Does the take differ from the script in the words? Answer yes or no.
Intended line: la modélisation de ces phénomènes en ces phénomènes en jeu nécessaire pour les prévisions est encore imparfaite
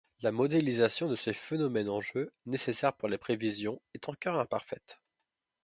yes